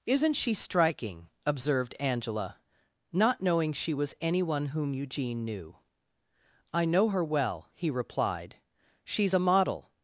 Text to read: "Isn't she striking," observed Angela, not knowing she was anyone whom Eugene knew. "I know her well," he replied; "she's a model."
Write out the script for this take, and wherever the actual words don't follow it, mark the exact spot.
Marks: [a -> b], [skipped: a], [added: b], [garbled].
"Isn't she striking," observed Angela, not knowing she was anyone whom Eugene knew. "I know her well," he replied; "she's a model."